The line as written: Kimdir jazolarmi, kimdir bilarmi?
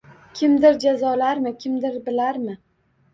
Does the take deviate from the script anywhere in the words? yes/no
no